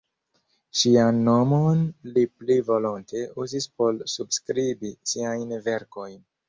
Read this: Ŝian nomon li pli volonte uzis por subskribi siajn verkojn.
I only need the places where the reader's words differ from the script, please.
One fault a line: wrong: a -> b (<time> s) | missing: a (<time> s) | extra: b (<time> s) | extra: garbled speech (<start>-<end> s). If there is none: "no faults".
no faults